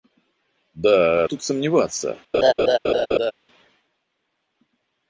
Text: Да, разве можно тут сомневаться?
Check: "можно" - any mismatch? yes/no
yes